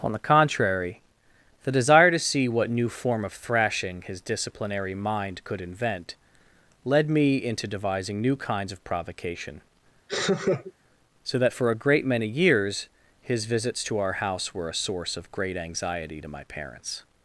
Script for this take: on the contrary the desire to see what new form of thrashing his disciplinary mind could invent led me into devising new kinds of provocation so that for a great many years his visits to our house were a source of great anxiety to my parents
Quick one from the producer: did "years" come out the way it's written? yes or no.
yes